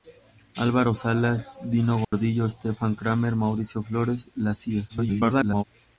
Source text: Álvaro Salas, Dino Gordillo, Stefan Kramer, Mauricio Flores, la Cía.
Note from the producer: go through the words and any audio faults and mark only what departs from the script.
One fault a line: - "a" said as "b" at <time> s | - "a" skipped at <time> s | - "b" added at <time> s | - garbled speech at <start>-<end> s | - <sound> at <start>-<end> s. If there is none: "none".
- dropout at 2.0-2.1 s
- garbled speech at 4.9-5.6 s